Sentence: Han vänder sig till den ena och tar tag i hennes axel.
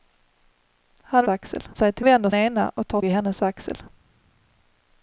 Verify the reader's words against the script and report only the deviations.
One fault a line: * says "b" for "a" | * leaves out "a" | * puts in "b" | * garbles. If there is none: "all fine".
* says "axel" for "vänder"
* says "vänder" for "den"
* leaves out "tag"